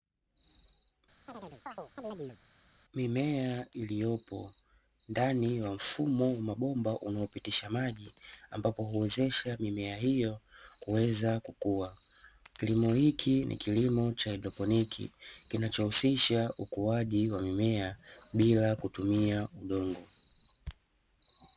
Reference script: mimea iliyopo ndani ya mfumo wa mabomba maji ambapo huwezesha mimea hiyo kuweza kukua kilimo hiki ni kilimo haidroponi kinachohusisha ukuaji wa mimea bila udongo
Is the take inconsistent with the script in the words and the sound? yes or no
yes